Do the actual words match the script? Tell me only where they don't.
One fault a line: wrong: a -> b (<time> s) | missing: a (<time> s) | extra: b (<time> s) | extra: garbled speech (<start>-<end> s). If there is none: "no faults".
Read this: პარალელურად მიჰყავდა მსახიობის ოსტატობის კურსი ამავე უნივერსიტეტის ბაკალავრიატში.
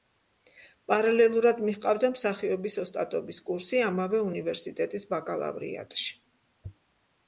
no faults